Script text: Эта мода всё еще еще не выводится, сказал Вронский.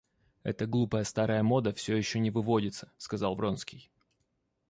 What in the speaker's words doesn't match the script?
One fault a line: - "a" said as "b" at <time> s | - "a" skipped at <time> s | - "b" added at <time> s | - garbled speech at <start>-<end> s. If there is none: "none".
- "глупая старая" added at 0.7 s
- "еще" skipped at 2.2 s